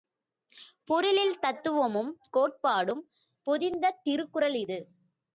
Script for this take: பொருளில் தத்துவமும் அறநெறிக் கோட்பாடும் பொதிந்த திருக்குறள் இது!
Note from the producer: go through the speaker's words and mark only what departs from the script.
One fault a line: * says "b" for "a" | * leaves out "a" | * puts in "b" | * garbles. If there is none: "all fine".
* leaves out "அறநெறிக்"